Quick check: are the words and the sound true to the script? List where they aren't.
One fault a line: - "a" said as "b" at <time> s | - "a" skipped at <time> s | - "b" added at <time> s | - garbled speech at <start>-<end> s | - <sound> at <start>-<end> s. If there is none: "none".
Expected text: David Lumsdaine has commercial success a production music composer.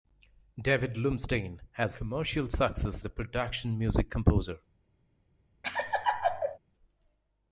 - laugh at 5.6-6.6 s